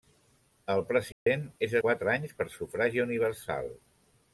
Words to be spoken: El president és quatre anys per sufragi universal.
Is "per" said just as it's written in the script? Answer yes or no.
yes